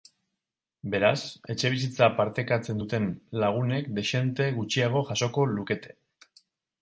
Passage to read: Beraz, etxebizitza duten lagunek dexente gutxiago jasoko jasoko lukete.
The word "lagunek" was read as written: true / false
true